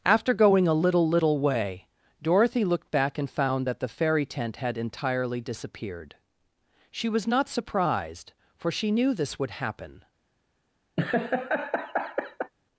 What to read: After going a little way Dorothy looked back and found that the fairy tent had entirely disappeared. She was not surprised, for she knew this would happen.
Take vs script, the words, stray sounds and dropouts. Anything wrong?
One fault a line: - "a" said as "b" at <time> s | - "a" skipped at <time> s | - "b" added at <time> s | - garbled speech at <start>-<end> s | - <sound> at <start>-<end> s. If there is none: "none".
- "little" added at 1.1 s
- laugh at 11.0-12.5 s